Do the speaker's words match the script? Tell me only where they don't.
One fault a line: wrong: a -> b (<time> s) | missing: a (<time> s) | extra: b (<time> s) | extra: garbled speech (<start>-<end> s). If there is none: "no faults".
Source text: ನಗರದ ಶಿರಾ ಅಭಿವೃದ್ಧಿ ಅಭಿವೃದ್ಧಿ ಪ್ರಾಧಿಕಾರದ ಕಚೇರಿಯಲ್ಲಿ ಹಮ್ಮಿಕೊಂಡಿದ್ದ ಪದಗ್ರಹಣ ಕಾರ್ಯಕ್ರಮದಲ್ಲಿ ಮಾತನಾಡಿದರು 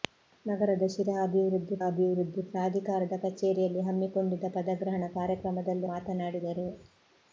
no faults